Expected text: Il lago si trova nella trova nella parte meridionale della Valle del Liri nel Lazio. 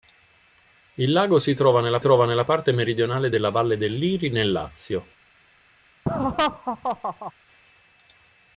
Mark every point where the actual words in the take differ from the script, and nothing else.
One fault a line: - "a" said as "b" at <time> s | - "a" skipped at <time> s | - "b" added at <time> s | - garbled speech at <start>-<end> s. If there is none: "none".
none